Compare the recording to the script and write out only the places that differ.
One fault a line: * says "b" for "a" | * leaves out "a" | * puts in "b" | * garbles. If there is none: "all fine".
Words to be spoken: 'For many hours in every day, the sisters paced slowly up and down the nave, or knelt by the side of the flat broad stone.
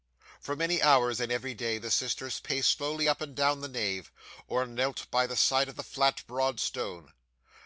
all fine